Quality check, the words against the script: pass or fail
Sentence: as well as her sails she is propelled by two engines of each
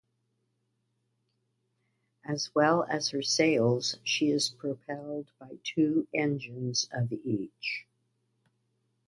pass